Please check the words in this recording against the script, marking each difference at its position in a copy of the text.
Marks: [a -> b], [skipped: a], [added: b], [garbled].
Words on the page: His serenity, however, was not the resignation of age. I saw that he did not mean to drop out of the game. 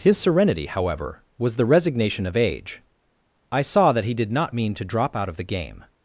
His serenity, however, was [skipped: not] the resignation of age. I saw that he did not mean to drop out of the game.